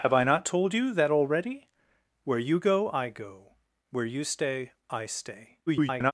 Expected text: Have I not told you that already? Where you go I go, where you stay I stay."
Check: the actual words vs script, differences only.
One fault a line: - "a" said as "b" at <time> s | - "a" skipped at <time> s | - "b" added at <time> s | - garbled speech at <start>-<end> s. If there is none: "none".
- garbled speech at 5.7-6.1 s